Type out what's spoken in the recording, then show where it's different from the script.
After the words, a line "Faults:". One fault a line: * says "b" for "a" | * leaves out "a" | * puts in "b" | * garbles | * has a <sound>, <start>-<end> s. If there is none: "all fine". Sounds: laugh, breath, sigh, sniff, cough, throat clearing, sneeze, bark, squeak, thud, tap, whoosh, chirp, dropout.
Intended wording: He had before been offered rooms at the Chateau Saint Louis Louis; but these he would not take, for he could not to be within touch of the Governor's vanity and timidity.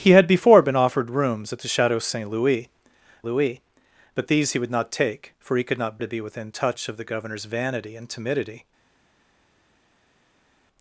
He had before been offered rooms at the Chateau Saint Louis Louis; but these he would not take, for he could not to be within touch of the Governor's vanity and timidity.
Faults:
all fine